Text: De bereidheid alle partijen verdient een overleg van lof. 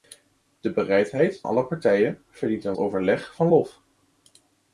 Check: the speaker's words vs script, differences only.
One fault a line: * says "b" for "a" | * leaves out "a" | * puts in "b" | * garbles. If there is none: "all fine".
all fine